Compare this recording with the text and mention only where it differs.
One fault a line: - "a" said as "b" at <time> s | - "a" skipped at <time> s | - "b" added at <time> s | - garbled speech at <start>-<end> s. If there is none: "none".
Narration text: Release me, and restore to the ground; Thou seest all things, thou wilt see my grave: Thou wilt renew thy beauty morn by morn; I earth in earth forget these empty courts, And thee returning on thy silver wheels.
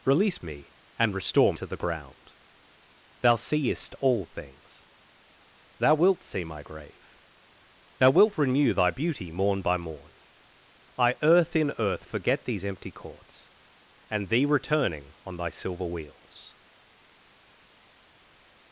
none